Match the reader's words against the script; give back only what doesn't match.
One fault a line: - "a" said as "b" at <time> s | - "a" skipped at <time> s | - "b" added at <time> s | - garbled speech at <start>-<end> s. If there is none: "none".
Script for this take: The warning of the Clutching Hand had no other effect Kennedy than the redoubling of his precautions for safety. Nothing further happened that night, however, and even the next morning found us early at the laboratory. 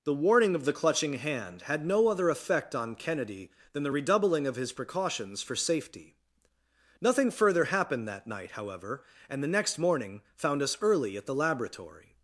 - "on" added at 2.7 s
- "even" skipped at 9.4 s